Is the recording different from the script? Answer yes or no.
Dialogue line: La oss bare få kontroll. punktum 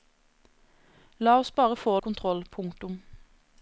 no